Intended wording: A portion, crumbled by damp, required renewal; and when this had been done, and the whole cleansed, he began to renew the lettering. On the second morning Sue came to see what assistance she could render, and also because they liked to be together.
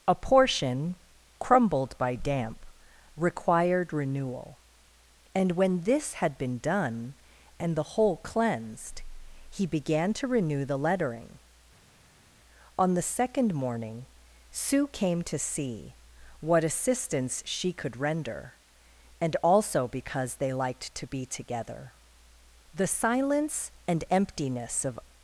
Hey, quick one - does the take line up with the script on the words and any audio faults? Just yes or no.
no